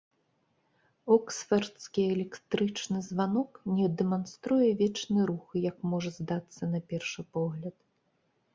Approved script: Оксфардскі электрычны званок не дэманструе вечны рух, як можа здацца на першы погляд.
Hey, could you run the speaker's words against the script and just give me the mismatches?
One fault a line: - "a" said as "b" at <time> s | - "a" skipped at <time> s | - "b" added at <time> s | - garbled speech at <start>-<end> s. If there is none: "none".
none